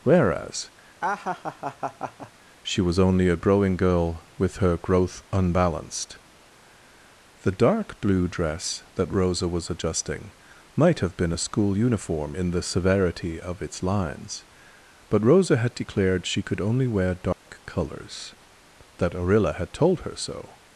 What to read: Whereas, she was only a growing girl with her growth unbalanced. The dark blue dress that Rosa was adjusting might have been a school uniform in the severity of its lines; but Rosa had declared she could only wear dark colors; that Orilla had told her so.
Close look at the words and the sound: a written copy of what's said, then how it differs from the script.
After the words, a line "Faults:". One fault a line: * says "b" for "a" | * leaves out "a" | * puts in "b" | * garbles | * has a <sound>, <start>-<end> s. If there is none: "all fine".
Whereas, she was only a growing girl with her growth unbalanced. The dark blue dress that Rosa was adjusting might have been a school uniform in the severity of its lines; but Rosa had declared she could only wear dark colors; that Orilla had told her so.
Faults:
* has a laugh, 1.0-2.3 s
* has a dropout, 17.3-17.5 s